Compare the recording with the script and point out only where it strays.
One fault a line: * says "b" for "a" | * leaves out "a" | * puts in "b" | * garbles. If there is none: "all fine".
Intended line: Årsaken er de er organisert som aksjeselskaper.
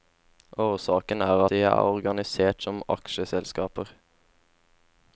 all fine